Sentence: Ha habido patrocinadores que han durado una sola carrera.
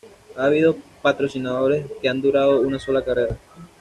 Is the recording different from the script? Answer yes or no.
no